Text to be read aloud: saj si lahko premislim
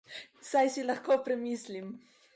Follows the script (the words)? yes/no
yes